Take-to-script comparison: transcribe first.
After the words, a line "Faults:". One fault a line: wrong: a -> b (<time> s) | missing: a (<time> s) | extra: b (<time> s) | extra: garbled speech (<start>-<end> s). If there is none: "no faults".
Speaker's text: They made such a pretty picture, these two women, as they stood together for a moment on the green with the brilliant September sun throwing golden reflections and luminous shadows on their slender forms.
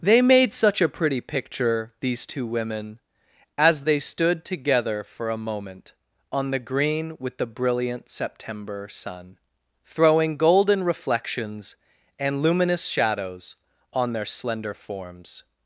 They made such a pretty picture, these two women, as they stood together for a moment on the green with the brilliant September sun throwing golden reflections and luminous shadows on their slender forms.
Faults:
no faults